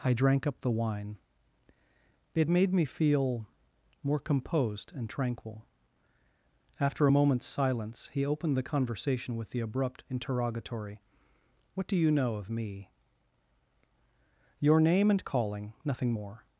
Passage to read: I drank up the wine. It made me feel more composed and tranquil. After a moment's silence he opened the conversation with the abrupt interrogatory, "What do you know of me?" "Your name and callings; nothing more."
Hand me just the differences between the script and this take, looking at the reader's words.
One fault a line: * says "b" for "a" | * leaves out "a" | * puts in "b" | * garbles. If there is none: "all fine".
* says "calling" for "callings"